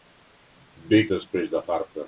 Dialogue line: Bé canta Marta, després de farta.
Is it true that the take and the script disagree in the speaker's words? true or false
true